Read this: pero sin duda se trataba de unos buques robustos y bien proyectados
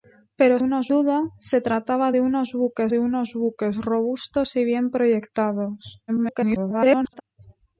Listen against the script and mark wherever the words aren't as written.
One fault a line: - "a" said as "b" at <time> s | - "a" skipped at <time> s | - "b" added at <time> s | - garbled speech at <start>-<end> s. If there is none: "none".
- "sin" said as "unos" at 0.6 s
- "de unos buques" added at 2.9 s
- garbled speech at 6.1-7.2 s